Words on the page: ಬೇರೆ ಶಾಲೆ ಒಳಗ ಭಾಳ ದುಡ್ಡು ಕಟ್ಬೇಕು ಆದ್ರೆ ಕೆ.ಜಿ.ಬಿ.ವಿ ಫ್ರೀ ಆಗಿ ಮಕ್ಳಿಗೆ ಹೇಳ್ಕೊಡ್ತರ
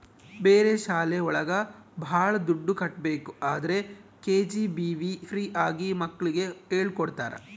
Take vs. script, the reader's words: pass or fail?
pass